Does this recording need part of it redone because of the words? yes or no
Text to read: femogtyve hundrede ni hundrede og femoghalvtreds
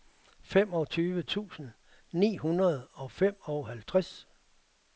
yes